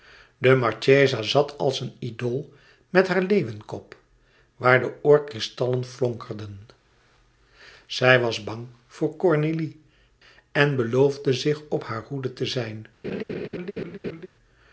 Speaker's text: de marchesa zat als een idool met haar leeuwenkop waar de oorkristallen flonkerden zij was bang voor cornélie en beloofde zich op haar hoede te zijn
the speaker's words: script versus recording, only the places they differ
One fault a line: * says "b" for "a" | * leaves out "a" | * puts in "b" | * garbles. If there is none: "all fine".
all fine